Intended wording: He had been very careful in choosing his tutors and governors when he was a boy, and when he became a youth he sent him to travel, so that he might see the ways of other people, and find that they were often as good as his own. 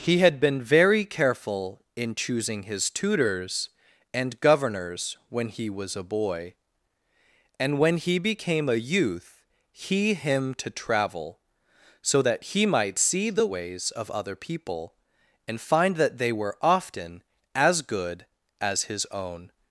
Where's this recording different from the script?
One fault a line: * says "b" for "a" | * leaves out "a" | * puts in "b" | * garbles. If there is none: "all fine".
* leaves out "sent"